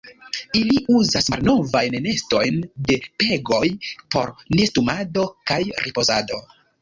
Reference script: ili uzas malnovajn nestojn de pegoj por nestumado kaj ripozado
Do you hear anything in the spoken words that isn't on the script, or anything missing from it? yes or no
no